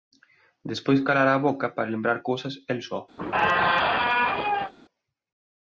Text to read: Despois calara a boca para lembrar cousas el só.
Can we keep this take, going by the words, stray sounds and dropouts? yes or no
no